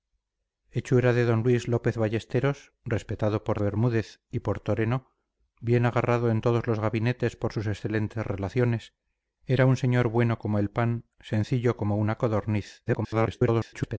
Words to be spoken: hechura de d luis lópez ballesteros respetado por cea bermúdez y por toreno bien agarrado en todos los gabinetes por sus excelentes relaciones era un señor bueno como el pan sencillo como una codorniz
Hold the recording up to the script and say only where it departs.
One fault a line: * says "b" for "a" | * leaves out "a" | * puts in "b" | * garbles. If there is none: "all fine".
* leaves out "cea"
* garbles